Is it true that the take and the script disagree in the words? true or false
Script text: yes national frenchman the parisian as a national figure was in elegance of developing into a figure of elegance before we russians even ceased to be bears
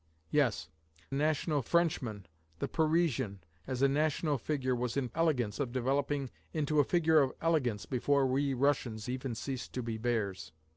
false